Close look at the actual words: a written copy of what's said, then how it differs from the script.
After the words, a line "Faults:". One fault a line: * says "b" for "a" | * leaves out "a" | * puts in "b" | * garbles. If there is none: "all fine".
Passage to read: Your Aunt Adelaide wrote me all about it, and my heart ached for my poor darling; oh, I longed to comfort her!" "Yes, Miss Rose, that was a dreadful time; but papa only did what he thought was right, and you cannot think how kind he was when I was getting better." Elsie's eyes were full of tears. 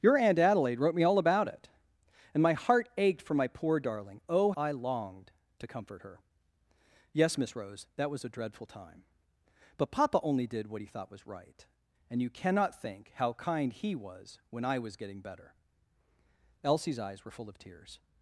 Your Aunt Adelaide wrote me all about it, and my heart ached for my poor darling; oh, I longed to comfort her!" "Yes, Miss Rose, that was a dreadful time; but papa only did what he thought was right, and you cannot think how kind he was when I was getting better." Elsie's eyes were full of tears.
Faults:
all fine